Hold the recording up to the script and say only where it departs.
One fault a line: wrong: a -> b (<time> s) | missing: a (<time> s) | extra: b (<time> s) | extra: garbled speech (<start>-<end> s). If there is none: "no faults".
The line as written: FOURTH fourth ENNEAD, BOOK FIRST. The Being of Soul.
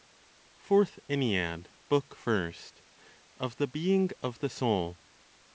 missing: fourth (1.0 s)
extra: Of (3.4 s)
extra: the (4.4 s)